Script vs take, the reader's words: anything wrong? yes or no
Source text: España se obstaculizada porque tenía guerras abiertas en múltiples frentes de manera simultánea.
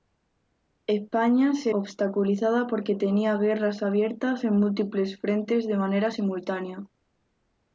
no